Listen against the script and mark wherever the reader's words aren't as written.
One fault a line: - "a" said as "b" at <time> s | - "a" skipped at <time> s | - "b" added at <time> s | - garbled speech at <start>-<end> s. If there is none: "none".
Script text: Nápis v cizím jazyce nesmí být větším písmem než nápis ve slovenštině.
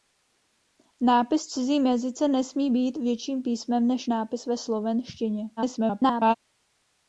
- garbled speech at 5.6-6.3 s